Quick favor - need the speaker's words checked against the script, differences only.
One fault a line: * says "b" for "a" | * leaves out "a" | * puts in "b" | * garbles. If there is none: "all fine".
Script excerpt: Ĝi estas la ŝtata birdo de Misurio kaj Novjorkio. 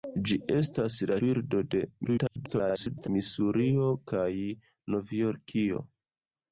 * leaves out "ŝtata"
* garbles